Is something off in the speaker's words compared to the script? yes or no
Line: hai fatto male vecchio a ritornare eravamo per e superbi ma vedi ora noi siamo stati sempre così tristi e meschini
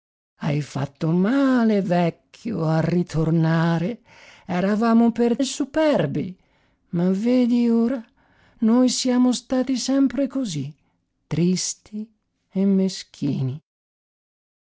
no